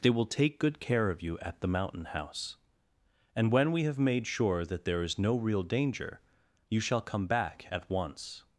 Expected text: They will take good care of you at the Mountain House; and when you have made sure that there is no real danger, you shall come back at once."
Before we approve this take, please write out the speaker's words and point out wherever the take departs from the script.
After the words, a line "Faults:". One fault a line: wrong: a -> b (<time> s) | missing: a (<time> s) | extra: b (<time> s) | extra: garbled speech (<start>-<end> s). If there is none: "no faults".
They will take good care of you at the Mountain House; and when we have made sure that there is no real danger, you shall come back at once."
Faults:
wrong: you -> we (3.7 s)